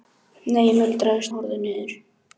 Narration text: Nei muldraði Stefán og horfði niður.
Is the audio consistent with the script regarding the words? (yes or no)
no